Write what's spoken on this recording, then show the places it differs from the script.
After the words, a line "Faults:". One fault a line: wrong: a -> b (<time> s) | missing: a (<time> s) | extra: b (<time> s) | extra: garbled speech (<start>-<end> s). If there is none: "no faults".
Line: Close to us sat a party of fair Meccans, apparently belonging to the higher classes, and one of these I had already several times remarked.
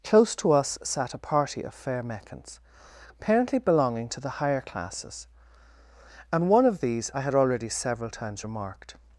Close to us sat a party of fair Meccans, apparently belonging to the higher classes, and one of these I had already several times remarked.
Faults:
no faults